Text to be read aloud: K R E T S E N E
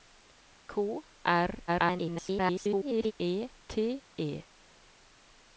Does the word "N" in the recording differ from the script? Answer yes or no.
yes